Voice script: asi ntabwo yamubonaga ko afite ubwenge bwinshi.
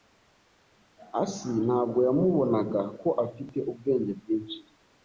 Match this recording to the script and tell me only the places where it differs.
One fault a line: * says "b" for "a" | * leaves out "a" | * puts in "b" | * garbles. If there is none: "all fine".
all fine